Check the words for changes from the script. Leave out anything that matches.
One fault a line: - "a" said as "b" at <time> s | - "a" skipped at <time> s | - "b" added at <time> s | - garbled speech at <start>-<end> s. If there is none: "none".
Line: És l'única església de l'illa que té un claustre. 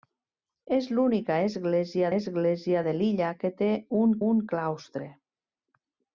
- "església" added at 2.2 s
- "un" added at 4.3 s